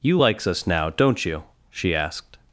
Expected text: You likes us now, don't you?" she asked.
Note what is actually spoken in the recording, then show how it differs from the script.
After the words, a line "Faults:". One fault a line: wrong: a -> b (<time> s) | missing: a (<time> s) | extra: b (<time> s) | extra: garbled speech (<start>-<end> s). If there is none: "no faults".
You likes us now, don't you?" she asked.
Faults:
no faults